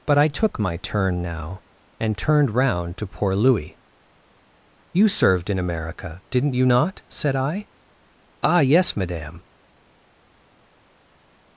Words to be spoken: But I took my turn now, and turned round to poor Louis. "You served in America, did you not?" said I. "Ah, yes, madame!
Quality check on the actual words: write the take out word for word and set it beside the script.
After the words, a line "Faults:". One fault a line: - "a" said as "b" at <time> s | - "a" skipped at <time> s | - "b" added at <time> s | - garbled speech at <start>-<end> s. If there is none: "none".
But I took my turn now, and turned round to poor Louis. "You served in America, didn't you not?" said I. "Ah, yes, madame!
Faults:
- "did" said as "didn't" at 6.3 s